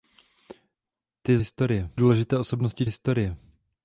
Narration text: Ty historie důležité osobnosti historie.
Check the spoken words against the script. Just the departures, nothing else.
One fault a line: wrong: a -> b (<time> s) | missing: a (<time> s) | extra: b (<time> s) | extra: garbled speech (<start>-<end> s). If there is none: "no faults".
no faults